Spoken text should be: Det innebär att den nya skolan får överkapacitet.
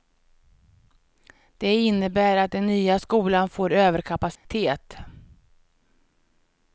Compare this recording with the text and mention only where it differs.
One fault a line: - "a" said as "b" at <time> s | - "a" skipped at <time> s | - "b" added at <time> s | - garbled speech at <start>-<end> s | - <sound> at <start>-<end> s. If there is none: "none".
- dropout at 4.4-4.4 s